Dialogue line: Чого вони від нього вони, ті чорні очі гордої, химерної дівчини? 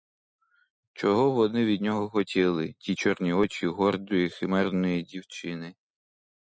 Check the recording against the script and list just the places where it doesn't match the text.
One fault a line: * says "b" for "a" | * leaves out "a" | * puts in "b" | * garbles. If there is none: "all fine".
* says "хотіли" for "вони"